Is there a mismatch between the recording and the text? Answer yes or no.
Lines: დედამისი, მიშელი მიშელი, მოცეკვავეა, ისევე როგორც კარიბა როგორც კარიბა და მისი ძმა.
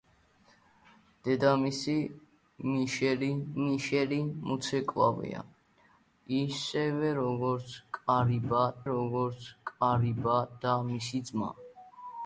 no